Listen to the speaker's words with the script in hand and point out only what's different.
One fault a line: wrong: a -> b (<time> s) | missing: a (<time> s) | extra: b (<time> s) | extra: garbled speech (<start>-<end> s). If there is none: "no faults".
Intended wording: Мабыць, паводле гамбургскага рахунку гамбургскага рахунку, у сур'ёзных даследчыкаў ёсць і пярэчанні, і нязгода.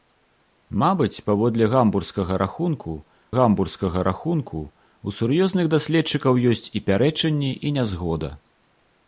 no faults